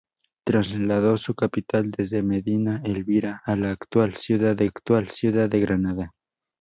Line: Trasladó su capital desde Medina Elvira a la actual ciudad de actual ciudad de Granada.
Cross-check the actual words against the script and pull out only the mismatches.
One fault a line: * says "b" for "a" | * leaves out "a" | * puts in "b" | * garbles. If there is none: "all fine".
all fine